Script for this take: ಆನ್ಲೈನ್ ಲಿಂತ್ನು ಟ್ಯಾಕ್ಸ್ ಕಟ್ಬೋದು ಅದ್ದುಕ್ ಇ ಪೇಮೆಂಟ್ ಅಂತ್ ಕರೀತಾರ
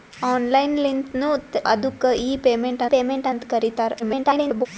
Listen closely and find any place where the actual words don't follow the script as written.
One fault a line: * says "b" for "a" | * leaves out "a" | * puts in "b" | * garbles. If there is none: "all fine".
* leaves out "ಟ್ಯಾಕ್ಸ್ ಕಟ್ಬೋದು"
* puts in "ಪೇಮೆಂಟ್"
* garbles